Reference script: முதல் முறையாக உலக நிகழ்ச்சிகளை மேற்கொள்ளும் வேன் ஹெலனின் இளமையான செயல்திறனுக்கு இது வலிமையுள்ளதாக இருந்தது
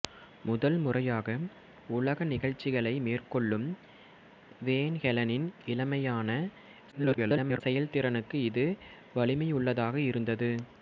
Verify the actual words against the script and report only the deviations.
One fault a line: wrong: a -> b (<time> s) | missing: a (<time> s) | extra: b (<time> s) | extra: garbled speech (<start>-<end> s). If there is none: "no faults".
extra: garbled speech (6.9-7.6 s)